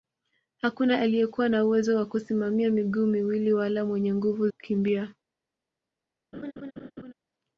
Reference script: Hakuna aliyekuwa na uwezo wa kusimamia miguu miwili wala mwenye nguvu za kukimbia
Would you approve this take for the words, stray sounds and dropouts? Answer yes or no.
no